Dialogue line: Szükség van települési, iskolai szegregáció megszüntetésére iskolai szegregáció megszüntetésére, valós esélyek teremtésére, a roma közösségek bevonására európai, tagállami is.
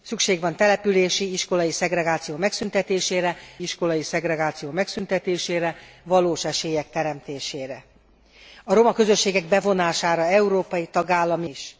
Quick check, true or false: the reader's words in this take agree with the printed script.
true